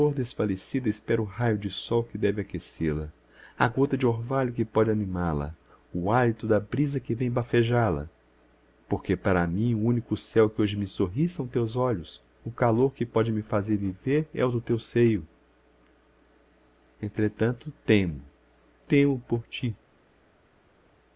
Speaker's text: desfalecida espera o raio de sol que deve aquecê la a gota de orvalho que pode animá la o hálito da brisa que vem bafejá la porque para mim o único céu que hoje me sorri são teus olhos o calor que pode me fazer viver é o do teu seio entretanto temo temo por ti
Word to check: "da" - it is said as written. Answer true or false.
true